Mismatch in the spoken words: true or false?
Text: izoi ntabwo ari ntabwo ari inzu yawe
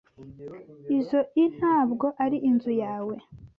true